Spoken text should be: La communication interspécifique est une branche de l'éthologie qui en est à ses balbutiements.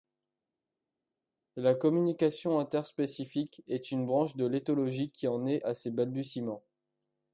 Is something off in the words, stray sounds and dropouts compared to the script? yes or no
no